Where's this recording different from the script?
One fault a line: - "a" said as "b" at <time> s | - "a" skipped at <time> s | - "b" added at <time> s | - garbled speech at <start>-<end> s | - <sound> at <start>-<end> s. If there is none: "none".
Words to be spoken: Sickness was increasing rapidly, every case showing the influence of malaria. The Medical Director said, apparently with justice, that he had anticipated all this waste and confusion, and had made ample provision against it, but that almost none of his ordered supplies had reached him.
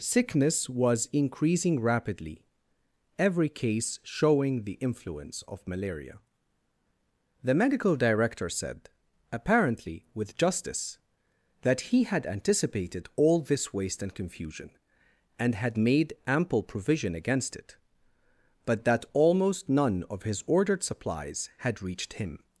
none